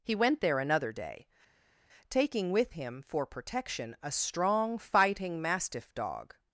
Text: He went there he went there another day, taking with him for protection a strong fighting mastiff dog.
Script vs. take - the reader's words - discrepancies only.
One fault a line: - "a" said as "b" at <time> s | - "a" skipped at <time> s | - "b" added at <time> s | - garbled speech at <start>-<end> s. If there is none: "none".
- "he went there" skipped at 0.6 s